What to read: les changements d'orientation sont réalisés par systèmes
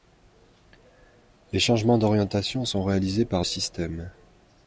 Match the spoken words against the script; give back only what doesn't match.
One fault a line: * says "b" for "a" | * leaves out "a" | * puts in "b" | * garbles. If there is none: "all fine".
all fine